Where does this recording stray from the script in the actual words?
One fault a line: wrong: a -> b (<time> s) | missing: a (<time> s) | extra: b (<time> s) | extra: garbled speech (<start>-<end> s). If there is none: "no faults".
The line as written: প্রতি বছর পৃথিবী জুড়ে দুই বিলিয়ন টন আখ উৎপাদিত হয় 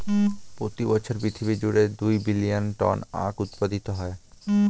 no faults